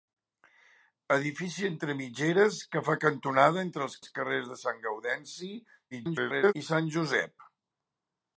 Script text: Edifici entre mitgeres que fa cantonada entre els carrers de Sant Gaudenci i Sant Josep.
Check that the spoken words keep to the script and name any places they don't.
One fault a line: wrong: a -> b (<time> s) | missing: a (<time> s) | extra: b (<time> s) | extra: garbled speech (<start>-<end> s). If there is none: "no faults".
extra: els (4.0 s)
extra: garbled speech (5.9-6.5 s)